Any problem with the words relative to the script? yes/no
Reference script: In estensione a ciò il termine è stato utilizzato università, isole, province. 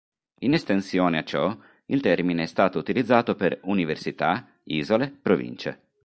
yes